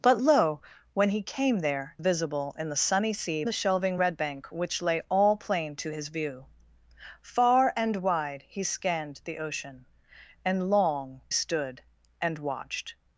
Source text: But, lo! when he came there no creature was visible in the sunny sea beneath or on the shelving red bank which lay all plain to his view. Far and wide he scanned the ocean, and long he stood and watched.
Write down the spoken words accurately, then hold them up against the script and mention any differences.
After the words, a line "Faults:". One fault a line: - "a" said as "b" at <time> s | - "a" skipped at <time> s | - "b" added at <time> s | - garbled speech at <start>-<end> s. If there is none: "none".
But, lo! when he came there visible in the sunny sea the shelving red bank which lay all plain to his view. Far and wide he scanned the ocean, and long stood and watched.
Faults:
- "no creature was" skipped at 1.9 s
- "beneath or on" skipped at 3.4 s
- "he" skipped at 11.2 s